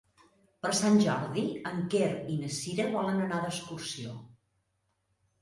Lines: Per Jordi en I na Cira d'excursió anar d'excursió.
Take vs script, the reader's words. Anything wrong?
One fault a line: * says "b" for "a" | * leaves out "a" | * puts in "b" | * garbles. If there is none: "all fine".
* puts in "Sant"
* puts in "Quer"
* says "volen" for "d'excursió"